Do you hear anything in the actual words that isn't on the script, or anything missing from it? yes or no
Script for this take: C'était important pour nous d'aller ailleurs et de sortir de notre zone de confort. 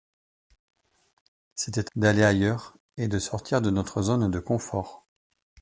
yes